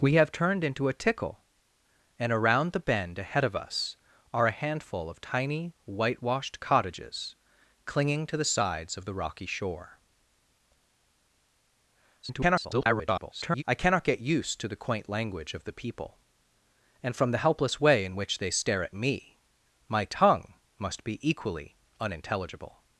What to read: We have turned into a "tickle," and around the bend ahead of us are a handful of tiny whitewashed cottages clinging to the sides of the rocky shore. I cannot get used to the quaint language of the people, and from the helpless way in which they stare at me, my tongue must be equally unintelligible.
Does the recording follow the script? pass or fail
fail